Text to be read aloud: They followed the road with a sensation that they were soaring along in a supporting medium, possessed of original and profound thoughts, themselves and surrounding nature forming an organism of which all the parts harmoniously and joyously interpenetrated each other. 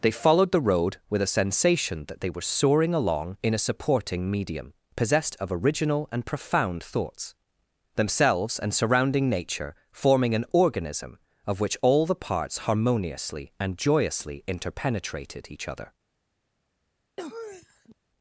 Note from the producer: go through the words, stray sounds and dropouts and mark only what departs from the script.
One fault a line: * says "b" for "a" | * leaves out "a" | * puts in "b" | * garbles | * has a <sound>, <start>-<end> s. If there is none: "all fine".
* has a sniff, 17.2-17.9 s